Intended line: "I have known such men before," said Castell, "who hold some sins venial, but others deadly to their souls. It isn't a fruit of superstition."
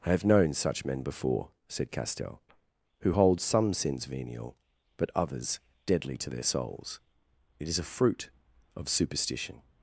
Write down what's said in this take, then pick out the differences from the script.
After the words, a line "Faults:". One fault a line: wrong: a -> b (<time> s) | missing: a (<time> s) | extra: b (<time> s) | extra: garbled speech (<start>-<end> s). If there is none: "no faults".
"I have known such men before," said Castell, "who hold some sins venial, but others deadly to their souls. It is a fruit of superstition."
Faults:
wrong: isn't -> is (7.7 s)